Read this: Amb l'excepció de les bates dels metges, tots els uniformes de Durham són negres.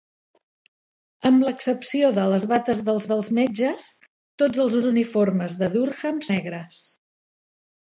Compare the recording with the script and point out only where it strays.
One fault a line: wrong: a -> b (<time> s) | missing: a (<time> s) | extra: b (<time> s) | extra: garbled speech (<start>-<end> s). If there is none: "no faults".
extra: dels (3.1 s)
extra: els (4.8 s)
missing: són (6.2 s)